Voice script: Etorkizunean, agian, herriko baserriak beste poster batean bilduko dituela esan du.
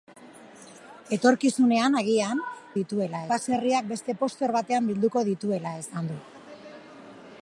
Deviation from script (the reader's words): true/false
true